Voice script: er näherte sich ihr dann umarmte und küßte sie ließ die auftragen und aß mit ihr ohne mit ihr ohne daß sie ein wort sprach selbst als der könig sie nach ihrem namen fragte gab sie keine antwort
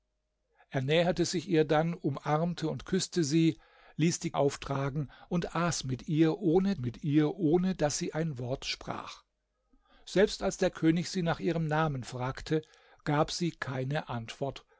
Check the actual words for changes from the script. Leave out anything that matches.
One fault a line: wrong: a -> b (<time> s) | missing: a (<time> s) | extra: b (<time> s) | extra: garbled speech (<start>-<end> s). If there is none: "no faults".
no faults